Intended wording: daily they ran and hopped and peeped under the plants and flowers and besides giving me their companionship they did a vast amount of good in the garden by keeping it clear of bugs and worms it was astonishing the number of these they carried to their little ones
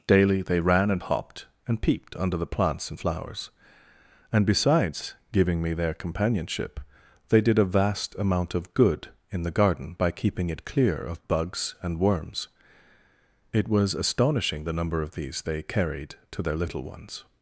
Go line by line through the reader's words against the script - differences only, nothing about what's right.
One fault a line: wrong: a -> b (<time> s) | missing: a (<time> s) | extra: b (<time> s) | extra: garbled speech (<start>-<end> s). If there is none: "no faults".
no faults